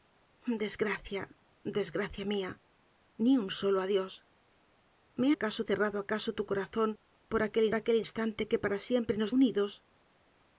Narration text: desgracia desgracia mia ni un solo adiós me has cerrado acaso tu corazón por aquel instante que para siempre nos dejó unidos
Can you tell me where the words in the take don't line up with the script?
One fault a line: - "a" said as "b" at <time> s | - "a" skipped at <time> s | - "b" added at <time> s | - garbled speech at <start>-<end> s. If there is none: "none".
- "has" said as "acaso" at 5.3 s
- "aquel" added at 7.8 s
- "dejó" skipped at 9.3 s